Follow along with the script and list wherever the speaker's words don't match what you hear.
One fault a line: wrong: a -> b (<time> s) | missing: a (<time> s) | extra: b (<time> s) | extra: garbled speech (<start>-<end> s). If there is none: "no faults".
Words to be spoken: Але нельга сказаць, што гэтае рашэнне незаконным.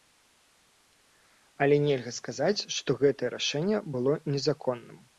extra: было (4.0 s)